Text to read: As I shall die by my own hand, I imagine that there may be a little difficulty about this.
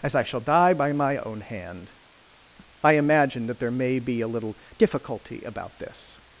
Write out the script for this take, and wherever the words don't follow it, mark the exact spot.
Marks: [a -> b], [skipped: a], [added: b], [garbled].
As I shall die by my own hand, I imagine that there may be a little difficulty about this.